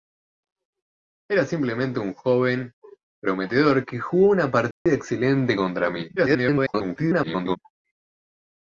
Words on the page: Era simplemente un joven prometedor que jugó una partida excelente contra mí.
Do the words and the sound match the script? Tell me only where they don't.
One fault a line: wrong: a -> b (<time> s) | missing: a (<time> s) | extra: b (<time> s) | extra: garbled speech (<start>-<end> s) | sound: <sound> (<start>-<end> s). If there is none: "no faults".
sound: dropout (4.7-4.9 s)
extra: garbled speech (6.2-7.6 s)